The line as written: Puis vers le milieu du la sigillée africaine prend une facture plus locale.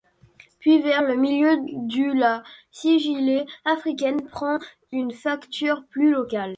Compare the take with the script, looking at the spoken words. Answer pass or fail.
pass